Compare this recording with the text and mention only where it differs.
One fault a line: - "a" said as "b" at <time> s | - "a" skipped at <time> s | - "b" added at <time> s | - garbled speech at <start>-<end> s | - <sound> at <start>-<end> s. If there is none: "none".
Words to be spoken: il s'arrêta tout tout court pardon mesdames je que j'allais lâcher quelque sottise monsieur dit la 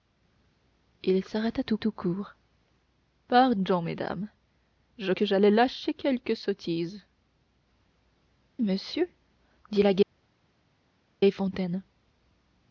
none